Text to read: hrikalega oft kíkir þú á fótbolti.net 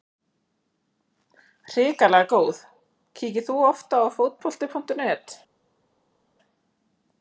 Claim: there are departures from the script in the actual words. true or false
true